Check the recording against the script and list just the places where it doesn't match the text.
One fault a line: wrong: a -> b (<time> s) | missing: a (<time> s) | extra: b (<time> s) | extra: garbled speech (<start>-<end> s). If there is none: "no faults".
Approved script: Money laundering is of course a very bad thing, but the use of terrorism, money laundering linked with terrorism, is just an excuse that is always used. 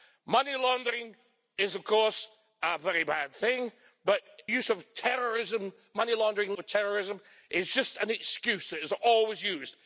missing: the (4.2 s)
missing: linked (6.5 s)